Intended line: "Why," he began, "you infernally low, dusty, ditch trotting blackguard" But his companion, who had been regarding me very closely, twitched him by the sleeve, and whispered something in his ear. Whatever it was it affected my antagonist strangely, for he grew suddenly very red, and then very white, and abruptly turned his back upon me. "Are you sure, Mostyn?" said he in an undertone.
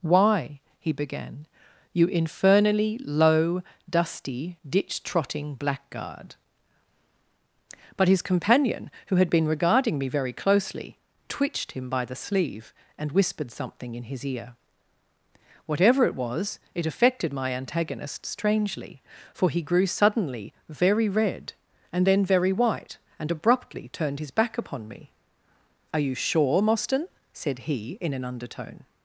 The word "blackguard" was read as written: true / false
true